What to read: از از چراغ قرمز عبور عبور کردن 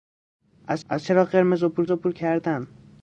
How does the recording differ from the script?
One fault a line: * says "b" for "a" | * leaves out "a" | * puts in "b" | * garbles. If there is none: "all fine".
all fine